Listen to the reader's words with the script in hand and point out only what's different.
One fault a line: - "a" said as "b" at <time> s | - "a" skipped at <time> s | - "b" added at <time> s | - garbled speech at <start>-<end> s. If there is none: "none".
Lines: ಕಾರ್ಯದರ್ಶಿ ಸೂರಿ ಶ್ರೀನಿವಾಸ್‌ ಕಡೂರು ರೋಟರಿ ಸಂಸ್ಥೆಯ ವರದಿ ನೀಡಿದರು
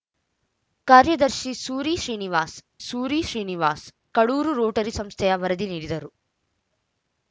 - "ಸೂರಿ ಶ್ರೀನಿವಾಸ್" added at 2.8 s